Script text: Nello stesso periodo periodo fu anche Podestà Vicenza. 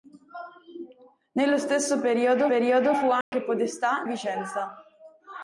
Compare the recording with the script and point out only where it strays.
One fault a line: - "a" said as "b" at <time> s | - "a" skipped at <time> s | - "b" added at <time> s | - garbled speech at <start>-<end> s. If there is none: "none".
none